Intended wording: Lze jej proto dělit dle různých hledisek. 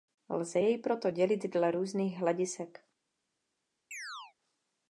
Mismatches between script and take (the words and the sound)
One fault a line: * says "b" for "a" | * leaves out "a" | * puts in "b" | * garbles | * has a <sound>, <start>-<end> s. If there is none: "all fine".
* has a chirp, 3.9-4.3 s